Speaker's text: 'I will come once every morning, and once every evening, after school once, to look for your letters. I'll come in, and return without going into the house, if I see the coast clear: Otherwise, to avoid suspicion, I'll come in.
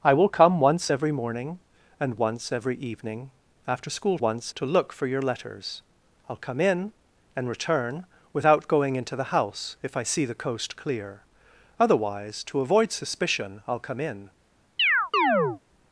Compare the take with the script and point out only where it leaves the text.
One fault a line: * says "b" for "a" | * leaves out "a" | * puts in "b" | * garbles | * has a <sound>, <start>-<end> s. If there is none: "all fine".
* has a chirp, 14.8-15.6 s